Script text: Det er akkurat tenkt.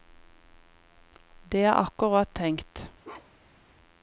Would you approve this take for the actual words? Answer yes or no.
yes